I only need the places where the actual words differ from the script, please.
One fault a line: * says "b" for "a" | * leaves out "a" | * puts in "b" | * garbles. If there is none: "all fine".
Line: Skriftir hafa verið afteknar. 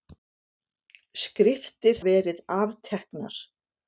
* leaves out "hafa"